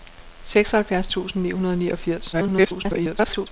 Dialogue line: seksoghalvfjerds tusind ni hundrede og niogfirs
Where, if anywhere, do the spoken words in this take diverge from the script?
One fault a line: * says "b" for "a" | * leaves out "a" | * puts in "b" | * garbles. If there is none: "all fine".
* garbles